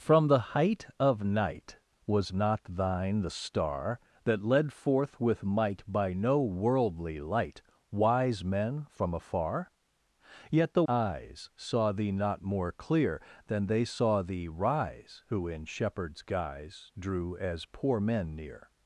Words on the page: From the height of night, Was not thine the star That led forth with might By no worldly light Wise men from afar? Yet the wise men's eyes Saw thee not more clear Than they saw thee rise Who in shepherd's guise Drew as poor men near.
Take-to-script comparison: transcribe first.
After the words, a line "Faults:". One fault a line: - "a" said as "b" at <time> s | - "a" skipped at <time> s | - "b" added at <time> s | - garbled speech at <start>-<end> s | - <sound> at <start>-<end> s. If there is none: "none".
From the height of night, Was not thine the star That led forth with might By no worldly light Wise men from afar? Yet the eyes Saw thee not more clear Than they saw thee rise Who in shepherd's guise Drew as poor men near.
Faults:
- "wise men's" skipped at 10.8 s